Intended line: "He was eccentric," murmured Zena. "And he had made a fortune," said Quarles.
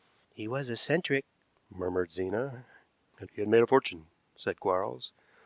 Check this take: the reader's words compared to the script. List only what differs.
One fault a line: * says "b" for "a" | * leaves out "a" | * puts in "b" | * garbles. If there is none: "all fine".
all fine